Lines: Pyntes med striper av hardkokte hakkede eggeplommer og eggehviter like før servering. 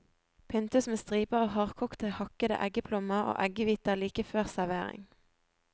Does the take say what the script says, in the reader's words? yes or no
yes